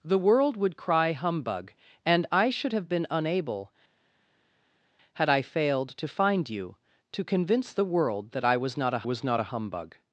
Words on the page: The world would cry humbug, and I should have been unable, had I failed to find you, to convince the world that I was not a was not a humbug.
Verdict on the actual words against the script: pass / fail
pass